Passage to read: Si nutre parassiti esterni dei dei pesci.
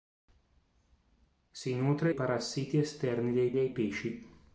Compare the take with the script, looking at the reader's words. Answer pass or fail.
pass